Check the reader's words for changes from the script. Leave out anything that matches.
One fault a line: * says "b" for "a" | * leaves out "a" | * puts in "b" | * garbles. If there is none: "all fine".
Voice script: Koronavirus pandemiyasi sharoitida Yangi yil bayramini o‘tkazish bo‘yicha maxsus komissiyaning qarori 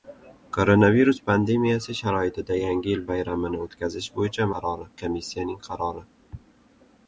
* says "qarori" for "maxsus"